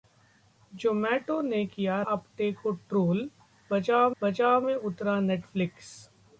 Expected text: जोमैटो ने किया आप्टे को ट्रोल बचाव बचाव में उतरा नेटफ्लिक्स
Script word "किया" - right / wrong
right